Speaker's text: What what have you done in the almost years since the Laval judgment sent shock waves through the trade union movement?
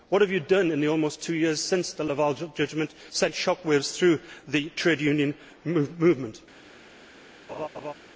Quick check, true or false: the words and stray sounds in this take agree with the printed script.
false